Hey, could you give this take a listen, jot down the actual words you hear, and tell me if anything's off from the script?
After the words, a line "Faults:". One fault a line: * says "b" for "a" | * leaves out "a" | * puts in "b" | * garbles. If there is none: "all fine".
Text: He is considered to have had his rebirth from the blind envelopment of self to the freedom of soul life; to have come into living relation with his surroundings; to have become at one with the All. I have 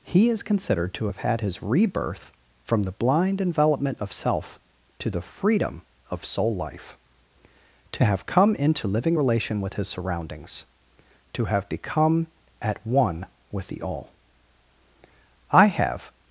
He is considered to have had his rebirth from the blind envelopment of self to the freedom of soul life; to have come into living relation with his surroundings; to have become at one with the All. I have
Faults:
all fine